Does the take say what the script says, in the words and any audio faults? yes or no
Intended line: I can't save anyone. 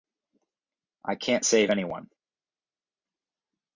yes